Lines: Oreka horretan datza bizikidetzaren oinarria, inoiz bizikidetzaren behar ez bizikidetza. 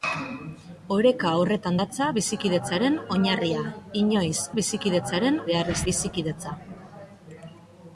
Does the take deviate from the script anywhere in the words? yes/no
no